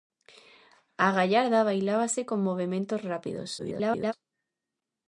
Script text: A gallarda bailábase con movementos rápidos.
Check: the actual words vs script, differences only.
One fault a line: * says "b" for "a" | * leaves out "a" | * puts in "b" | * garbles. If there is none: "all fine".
* garbles